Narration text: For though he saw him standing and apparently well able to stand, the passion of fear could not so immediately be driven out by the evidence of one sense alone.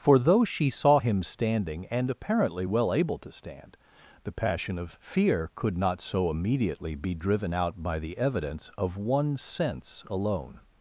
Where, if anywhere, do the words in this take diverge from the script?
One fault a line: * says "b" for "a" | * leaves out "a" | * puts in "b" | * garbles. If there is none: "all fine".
* says "she" for "he"